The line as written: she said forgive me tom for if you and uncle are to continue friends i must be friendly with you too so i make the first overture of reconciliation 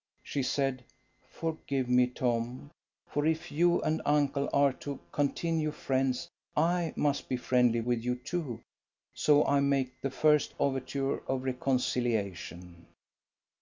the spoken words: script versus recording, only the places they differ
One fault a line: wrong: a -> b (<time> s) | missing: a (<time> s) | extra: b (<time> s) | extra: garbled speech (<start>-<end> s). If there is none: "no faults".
no faults